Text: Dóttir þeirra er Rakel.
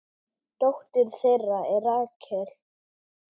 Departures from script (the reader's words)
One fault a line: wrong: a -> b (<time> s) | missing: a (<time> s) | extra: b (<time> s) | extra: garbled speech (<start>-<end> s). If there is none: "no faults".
no faults